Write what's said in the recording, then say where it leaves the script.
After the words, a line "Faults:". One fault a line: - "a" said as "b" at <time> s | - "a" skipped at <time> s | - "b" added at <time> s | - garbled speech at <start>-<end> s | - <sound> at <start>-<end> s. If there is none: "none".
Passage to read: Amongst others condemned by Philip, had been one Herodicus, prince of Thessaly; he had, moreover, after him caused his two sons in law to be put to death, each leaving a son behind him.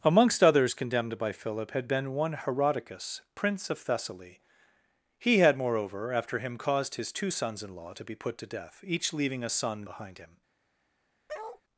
Amongst others condemned by Philip, had been one Herodicus, prince of Thessaly; he had, moreover, after him caused his two sons in law to be put to death, each leaving a son behind him.
Faults:
- bark at 11.3-11.6 s